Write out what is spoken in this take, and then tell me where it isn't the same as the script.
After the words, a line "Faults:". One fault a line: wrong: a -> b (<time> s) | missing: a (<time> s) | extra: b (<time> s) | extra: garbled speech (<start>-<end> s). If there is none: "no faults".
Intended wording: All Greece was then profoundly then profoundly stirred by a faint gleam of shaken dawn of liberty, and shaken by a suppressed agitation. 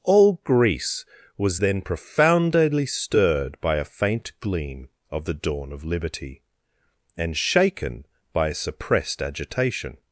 All Greece was then profoundly stirred by a faint gleam of the dawn of liberty, and shaken by a suppressed agitation.
Faults:
missing: then profoundly (2.9 s)
wrong: shaken -> the (5.2 s)